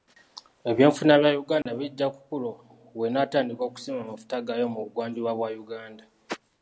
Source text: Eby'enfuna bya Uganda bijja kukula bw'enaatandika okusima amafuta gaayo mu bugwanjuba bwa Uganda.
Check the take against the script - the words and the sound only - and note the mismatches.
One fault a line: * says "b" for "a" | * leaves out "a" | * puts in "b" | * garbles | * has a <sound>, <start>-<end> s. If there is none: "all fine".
* has a dropout, 1.6-1.7 s